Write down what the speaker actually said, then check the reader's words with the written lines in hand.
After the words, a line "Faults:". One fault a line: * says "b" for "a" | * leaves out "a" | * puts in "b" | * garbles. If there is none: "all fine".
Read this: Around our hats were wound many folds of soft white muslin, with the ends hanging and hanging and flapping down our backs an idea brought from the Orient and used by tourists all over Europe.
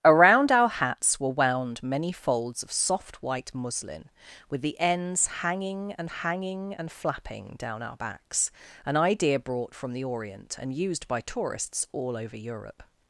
Around our hats were wound many folds of soft white muslin, with the ends hanging and hanging and flapping down our backs an idea brought from the Orient and used by tourists all over Europe.
Faults:
all fine